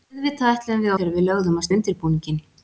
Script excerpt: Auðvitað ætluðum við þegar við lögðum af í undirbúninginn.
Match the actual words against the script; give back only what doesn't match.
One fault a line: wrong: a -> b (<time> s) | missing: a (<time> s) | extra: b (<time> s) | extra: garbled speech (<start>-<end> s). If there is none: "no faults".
no faults